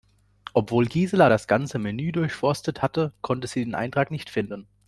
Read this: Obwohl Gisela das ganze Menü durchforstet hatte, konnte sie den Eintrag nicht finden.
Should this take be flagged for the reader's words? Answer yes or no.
no